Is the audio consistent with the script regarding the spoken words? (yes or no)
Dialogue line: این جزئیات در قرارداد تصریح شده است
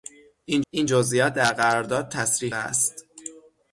no